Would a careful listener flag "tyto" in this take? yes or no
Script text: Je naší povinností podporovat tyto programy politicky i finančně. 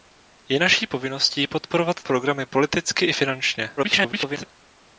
yes